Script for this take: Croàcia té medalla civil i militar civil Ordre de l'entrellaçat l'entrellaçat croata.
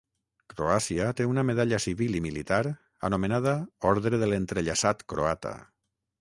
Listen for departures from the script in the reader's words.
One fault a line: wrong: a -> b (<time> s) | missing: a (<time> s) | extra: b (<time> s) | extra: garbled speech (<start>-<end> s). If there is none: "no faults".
extra: una (1.3 s)
wrong: civil -> anomenada (3.1 s)
missing: l'entrellaçat (5.1 s)